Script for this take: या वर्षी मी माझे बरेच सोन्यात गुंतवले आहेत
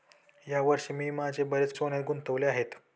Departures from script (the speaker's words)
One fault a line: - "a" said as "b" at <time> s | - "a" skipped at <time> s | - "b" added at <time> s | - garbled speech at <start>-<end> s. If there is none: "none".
none